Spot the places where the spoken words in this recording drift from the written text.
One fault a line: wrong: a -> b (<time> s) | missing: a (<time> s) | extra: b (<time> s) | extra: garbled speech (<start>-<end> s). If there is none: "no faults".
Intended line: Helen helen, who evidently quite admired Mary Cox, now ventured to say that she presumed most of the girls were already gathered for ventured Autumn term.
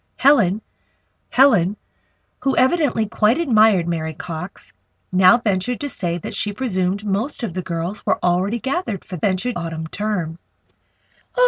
no faults